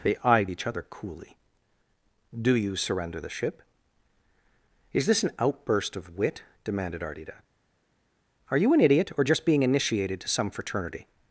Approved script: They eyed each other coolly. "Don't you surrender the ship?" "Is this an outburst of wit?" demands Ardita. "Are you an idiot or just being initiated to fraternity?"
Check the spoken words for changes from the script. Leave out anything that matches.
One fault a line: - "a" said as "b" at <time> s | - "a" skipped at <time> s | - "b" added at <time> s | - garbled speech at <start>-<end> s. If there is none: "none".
- "Don't" said as "Do" at 2.4 s
- "demands" said as "demanded" at 6.6 s
- "some" added at 10.3 s